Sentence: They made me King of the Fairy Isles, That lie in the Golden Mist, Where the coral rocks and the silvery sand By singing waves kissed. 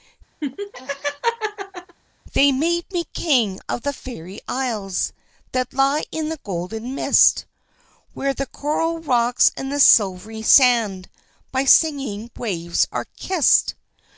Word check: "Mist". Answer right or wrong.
right